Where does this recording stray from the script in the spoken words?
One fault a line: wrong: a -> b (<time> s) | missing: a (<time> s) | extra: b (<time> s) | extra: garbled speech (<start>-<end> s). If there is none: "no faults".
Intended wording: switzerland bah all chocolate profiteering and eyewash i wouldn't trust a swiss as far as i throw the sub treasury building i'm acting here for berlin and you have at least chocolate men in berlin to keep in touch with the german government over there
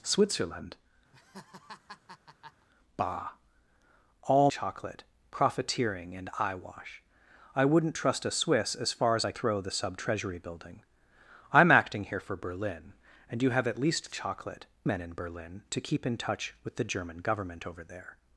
no faults